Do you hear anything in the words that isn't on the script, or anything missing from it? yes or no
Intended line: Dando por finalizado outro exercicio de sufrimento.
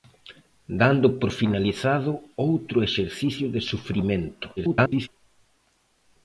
yes